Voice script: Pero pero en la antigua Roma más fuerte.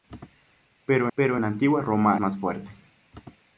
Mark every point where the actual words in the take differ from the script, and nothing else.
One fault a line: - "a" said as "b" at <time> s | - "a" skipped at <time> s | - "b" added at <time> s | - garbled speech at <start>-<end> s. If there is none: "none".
none